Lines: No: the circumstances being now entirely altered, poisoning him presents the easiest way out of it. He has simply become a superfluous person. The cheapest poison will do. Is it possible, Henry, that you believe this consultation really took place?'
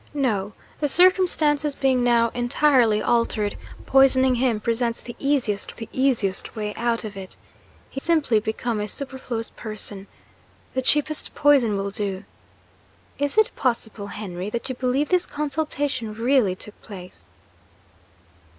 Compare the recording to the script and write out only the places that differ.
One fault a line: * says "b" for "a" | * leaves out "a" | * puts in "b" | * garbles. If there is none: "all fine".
* puts in "the easiest"
* leaves out "has"